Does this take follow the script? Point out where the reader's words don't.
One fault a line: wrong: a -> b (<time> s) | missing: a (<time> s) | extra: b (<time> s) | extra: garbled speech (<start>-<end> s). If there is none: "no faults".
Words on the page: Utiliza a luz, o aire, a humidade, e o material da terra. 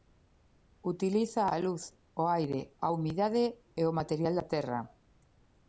no faults